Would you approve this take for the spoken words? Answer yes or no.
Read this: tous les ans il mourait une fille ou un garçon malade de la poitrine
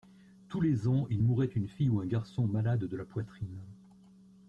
yes